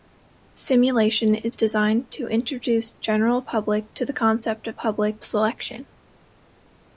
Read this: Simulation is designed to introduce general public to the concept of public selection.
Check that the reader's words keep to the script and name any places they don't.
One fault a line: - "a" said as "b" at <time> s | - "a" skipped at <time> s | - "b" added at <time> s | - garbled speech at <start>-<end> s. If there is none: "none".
none